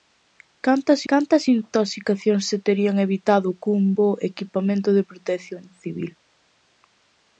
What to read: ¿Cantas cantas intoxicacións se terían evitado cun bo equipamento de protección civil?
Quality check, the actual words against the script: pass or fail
pass